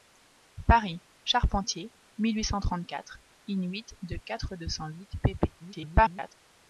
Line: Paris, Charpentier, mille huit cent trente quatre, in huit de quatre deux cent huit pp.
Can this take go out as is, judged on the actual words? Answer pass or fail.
fail